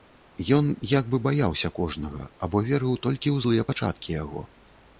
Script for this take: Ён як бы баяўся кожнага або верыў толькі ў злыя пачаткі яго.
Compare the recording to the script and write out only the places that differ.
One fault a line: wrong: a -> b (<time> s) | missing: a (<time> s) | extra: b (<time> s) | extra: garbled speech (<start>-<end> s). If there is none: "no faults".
no faults